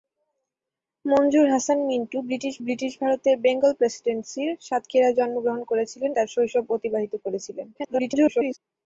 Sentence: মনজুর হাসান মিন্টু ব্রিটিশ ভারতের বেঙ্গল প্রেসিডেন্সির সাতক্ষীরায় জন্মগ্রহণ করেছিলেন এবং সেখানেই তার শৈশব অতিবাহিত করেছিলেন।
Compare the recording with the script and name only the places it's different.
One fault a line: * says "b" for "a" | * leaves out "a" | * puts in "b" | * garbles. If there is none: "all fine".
* puts in "ব্রিটিশ"
* leaves out "এবং সেখানেই"
* garbles